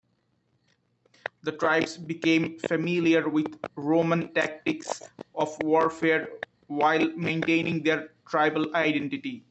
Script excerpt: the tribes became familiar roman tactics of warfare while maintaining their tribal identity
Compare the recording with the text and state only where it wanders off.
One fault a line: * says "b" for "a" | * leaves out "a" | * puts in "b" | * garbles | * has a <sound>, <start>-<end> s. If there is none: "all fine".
* puts in "with"